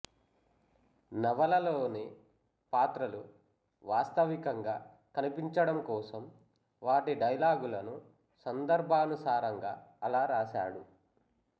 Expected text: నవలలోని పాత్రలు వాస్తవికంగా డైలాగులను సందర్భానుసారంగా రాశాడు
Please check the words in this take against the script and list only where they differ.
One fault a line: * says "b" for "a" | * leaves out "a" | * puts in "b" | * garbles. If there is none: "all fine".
* puts in "కనిపించడం కోసం వాటి"
* puts in "అలా"